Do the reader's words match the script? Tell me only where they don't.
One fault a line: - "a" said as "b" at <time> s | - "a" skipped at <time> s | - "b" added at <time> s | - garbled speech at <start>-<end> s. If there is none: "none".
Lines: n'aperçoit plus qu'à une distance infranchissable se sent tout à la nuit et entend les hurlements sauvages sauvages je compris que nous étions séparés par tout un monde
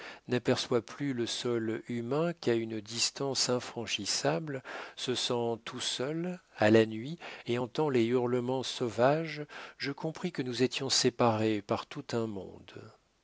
- "le sol humain" added at 1.1 s
- "seul" added at 5.8 s
- "sauvages" skipped at 9.4 s